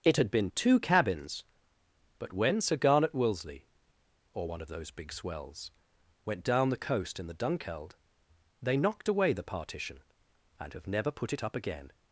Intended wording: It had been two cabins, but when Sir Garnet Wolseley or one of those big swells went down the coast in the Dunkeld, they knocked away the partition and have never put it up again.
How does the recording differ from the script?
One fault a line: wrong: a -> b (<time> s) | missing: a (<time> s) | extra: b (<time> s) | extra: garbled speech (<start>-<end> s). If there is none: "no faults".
no faults